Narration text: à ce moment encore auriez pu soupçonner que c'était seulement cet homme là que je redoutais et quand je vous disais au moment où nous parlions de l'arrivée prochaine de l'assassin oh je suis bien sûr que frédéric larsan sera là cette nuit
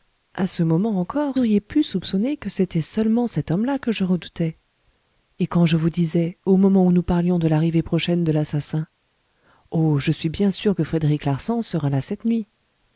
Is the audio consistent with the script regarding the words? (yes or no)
yes